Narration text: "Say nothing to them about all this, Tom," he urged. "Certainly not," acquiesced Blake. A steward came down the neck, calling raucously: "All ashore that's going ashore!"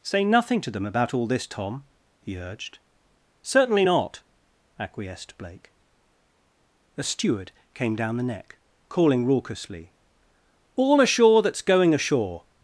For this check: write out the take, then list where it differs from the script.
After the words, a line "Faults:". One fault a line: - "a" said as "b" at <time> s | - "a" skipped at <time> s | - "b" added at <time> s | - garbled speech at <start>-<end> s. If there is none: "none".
"Say nothing to them about all this, Tom," he urged. "Certainly not," acquiesced Blake. A steward came down the neck, calling raucously: "All ashore that's going ashore!"
Faults:
none